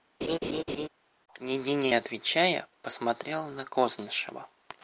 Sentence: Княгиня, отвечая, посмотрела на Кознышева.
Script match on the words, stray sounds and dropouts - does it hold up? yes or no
no